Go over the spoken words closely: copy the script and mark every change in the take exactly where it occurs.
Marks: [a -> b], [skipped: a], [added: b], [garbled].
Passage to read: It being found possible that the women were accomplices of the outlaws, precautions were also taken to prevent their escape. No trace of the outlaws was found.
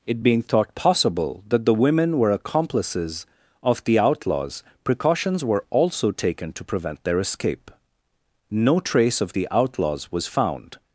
It being [found -> thought] possible that the women were accomplices of the outlaws, precautions were also taken to prevent their escape. No trace of the outlaws was found.